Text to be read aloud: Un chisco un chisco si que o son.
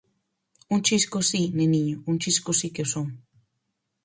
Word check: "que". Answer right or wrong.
right